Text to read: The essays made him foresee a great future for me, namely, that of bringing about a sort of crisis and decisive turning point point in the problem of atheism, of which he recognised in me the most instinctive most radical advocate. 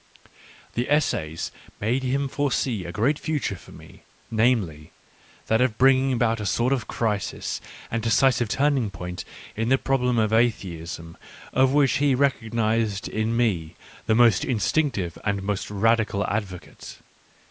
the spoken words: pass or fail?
fail